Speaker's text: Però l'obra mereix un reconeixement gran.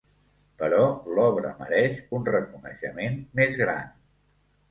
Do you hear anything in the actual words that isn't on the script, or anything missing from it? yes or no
yes